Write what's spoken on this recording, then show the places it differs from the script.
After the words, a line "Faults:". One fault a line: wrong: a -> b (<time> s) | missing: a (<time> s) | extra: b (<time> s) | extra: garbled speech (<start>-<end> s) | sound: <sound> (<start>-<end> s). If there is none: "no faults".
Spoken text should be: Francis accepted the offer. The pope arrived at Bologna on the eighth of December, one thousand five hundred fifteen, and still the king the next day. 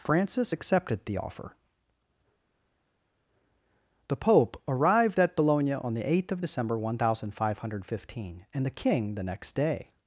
Francis accepted the offer. The pope arrived at Bologna on the eighth of December, one thousand five hundred fifteen, and the king the next day.
Faults:
missing: still (8.7 s)